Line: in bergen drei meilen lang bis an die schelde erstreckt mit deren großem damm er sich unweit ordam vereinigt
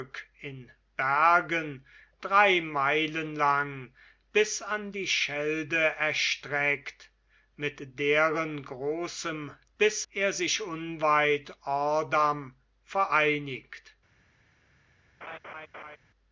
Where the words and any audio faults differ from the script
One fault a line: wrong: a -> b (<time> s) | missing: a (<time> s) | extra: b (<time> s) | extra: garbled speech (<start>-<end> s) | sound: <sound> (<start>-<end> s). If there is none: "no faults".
wrong: damm -> bis (9.8 s)
sound: laugh (15.2-16.0 s)